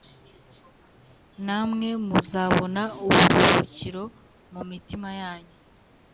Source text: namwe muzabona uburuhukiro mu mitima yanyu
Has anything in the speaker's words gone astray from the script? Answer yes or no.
no